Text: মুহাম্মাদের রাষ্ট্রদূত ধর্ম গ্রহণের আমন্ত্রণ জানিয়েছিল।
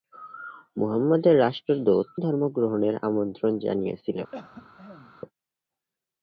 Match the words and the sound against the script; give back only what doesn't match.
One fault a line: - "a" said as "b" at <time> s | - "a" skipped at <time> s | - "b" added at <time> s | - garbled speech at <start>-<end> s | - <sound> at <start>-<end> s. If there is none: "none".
- cough at 4.3-5.1 s